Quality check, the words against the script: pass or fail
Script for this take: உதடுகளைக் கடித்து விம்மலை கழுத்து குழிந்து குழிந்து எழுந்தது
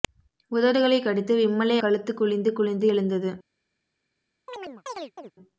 pass